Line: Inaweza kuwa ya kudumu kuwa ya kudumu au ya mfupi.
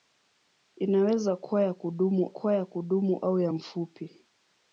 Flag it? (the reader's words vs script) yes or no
no